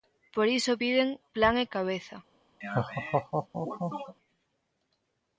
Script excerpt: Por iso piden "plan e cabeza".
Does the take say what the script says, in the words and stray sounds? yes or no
no